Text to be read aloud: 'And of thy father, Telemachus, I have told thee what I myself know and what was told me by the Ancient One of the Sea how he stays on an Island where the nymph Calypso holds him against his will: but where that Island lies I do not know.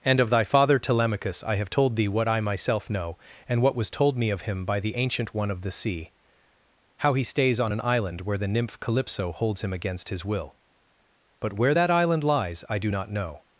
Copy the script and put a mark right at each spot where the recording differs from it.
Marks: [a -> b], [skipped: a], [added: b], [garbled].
'And of thy father, Telemachus, I have told thee what I myself know and what was told me [added: of him] by the Ancient One of the Sea how he stays on an Island where the nymph Calypso holds him against his will: but where that Island lies I do not know.